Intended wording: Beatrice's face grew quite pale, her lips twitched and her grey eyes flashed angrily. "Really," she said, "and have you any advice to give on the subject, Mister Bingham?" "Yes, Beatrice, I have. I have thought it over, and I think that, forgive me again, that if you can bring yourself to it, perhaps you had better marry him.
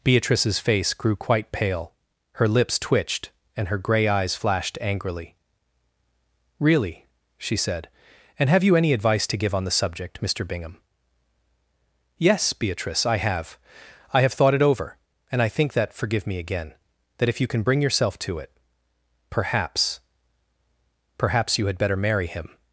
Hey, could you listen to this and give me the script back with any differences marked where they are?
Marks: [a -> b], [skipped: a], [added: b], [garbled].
Beatrice's face grew quite pale, her lips twitched and her grey eyes flashed angrily. "Really," she said, "and have you any advice to give on the subject, Mister Bingham?" "Yes, Beatrice, I have. I have thought it over, and I think that, forgive me again, that if you can bring yourself to it, perhaps [added: perhaps] you had better marry him.